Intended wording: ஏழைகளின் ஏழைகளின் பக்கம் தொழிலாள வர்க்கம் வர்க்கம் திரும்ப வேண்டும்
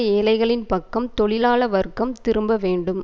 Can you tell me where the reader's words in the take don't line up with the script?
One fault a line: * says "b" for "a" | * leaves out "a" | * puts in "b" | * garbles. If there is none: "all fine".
* leaves out "ஏழைகளின்"
* leaves out "வர்க்கம்"